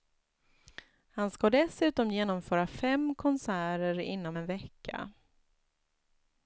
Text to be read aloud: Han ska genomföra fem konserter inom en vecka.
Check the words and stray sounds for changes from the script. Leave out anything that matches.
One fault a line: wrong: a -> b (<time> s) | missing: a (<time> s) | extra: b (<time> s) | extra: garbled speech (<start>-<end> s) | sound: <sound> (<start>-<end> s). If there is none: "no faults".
extra: dessutom (1.5 s)